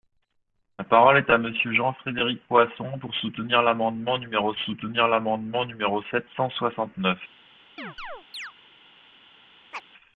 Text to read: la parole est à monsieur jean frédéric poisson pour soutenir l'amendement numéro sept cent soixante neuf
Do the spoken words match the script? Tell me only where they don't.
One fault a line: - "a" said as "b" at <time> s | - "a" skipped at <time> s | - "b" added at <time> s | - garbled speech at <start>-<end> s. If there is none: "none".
- "soutenir l'amendement numéro" added at 4.6 s